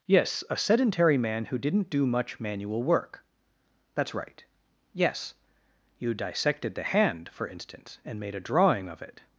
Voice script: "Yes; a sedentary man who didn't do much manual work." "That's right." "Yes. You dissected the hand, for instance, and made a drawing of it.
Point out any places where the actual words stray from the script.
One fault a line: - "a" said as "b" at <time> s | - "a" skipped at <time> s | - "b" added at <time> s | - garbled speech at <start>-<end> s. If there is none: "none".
none